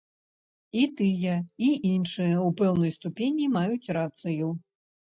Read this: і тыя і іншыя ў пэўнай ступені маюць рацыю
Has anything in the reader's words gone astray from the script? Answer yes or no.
no